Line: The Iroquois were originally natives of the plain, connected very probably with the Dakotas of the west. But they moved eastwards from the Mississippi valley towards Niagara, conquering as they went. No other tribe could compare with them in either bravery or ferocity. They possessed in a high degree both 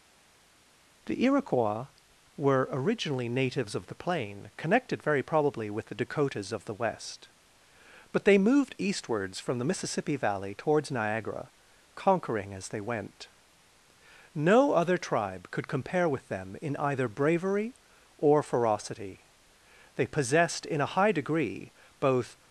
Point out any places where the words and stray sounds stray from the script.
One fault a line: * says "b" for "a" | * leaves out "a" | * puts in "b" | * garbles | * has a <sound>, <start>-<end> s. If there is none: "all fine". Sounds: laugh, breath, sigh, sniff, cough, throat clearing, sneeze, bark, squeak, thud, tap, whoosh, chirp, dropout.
all fine